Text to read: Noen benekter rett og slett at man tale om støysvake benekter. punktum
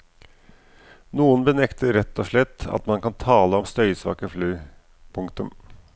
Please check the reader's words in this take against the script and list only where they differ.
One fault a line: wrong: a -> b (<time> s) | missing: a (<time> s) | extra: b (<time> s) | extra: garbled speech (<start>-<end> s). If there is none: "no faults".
extra: kan (3.0 s)
wrong: benekter -> fly (4.3 s)